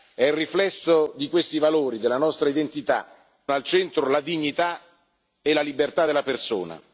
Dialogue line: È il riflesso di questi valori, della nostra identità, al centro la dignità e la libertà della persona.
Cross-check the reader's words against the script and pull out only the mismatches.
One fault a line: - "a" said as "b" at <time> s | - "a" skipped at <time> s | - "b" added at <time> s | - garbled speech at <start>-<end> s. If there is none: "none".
none